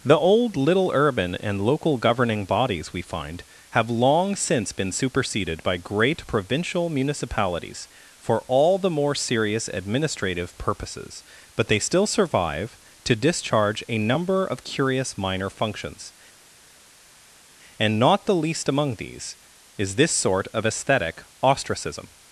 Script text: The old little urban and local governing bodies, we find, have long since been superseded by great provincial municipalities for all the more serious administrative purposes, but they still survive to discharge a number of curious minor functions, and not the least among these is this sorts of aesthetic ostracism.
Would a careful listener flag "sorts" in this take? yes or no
yes